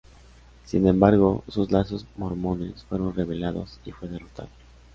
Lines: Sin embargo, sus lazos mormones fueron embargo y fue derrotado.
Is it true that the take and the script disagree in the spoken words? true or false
true